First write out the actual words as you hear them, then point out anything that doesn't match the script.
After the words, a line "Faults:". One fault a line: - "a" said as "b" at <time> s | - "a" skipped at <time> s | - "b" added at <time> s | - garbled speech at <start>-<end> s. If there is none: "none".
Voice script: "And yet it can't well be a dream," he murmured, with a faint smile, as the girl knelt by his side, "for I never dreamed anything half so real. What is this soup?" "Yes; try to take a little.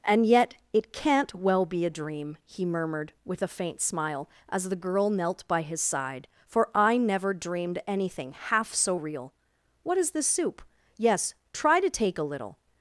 "And yet it can't well be a dream," he murmured, with a faint smile, as the girl knelt by his side, "for I never dreamed anything half so real. What is this soup?" "Yes; try to take a little.
Faults:
none